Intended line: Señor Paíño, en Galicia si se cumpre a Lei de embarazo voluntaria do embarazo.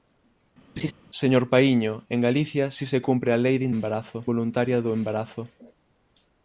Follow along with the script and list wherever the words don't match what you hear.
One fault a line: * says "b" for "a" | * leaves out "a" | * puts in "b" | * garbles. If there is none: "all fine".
all fine